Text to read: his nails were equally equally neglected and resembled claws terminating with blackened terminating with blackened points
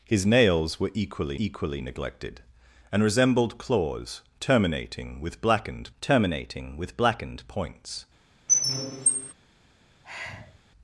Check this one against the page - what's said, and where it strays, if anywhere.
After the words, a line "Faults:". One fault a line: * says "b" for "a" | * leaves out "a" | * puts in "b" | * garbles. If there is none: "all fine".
his nails were equally equally neglected and resembled claws terminating with blackened terminating with blackened points
Faults:
all fine